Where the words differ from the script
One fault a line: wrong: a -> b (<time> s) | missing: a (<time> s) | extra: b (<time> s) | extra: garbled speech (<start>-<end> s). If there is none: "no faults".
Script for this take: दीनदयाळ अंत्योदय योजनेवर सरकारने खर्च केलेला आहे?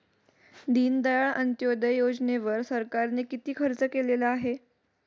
extra: किती (3.3 s)